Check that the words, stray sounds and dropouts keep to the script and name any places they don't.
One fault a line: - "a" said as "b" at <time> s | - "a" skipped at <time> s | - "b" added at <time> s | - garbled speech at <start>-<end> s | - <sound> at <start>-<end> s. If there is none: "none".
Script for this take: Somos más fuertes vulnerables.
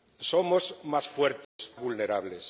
- dropout at 1.4-1.6 s